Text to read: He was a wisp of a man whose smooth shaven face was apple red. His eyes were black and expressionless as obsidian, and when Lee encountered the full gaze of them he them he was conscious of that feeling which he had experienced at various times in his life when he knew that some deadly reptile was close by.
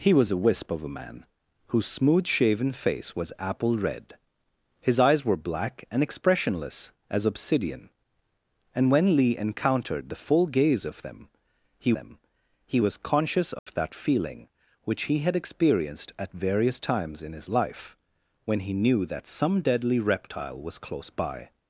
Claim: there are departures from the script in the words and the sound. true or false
true